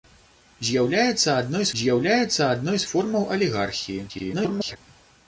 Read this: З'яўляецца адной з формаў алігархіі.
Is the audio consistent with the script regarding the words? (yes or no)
no